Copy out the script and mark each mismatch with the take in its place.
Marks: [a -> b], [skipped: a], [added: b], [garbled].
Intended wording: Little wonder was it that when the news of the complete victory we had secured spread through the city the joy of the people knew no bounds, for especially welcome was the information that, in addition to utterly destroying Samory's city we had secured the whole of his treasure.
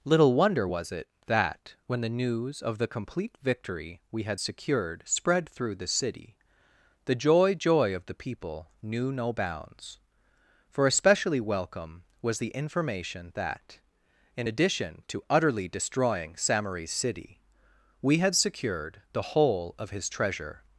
Little wonder was it that when the news of the complete victory we had secured spread through the city the joy [added: joy] of the people knew no bounds, for especially welcome was the information that, in addition to utterly destroying Samory's city we had secured the whole of his treasure.